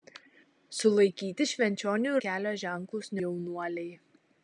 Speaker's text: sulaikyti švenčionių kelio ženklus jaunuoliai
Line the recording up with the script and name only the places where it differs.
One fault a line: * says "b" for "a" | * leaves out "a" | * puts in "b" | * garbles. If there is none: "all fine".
all fine